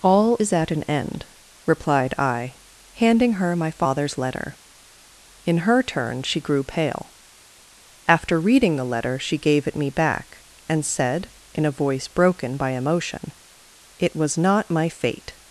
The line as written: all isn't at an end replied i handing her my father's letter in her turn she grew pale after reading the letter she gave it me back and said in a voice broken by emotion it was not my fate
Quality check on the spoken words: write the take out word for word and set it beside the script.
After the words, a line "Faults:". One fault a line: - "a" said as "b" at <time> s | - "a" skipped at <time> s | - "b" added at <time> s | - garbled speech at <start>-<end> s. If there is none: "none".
all is at an end replied i handing her my father's letter in her turn she grew pale after reading the letter she gave it me back and said in a voice broken by emotion it was not my fate
Faults:
- "isn't" said as "is" at 0.4 s